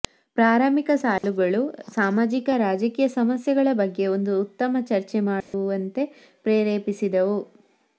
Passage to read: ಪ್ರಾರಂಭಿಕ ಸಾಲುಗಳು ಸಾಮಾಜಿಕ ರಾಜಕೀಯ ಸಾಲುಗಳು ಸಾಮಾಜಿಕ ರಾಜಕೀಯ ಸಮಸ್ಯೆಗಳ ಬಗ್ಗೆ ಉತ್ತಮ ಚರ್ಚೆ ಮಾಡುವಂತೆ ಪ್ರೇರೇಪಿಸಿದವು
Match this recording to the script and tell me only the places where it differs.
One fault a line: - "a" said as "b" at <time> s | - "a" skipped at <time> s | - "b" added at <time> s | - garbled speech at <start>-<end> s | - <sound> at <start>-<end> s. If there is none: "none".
- dropout at 1.2-1.2 s
- "ಸಾಲುಗಳು ಸಾಮಾಜಿಕ ರಾಜಕೀಯ" skipped at 3.1 s
- "ಒಂದು" added at 4.2 s
- dropout at 5.4-5.5 s